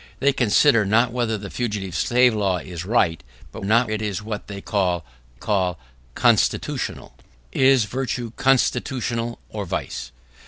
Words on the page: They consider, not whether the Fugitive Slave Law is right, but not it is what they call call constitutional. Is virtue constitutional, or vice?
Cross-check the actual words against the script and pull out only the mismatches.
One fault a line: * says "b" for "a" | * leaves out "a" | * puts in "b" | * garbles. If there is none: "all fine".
all fine